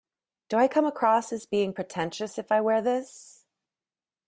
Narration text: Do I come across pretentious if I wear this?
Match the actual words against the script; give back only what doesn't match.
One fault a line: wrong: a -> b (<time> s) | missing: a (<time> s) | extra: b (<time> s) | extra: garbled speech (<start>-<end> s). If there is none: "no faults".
extra: as being (1.3 s)